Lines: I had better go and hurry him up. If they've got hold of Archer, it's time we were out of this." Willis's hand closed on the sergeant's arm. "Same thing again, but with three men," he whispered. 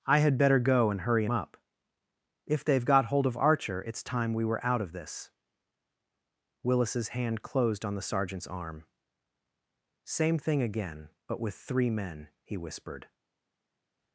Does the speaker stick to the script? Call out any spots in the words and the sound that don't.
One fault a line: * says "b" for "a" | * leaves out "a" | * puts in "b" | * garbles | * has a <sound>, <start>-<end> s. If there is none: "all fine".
* leaves out "him"